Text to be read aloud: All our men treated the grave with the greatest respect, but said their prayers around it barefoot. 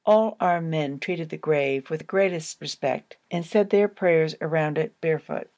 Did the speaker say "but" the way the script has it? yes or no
no